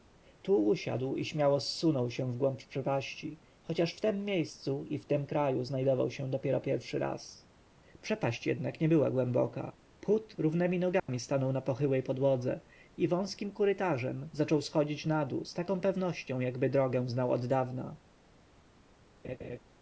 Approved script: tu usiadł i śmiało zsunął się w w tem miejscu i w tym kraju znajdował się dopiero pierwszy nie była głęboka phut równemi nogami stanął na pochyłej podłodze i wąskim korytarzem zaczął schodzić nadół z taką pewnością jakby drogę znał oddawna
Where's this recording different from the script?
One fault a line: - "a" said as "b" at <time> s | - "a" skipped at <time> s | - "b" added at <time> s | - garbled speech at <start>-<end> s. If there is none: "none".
- "głąb przepaści chociaż" added at 2.4 s
- "raz przepaść jednak" added at 7.0 s